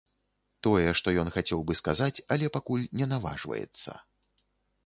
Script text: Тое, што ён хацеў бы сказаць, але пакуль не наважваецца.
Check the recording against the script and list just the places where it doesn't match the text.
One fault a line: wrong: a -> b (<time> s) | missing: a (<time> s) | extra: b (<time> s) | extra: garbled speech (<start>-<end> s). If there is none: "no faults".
no faults